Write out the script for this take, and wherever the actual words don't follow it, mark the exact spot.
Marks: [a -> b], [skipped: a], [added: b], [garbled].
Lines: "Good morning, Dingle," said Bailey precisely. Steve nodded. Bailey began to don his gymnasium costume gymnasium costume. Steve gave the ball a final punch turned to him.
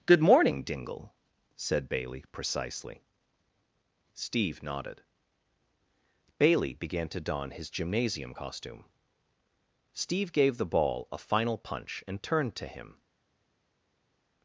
"Good morning, Dingle," said Bailey precisely. Steve nodded. Bailey began to don his gymnasium costume [skipped: gymnasium costume.] Steve gave the ball a final punch [added: and] turned to him.